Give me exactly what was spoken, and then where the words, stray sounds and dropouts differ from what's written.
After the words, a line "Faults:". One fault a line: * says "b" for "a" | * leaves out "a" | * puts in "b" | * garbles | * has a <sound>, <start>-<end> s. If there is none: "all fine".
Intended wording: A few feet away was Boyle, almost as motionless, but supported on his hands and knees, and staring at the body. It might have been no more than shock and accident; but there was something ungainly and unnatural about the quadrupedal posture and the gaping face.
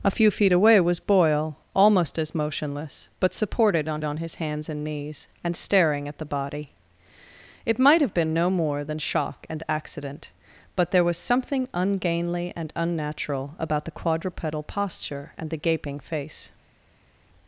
A few feet away was Boyle, almost as motionless, but supported on on his hands and knees, and staring at the body. It might have been no more than shock and accident; but there was something ungainly and unnatural about the quadrupedal posture and the gaping face.
Faults:
* puts in "on"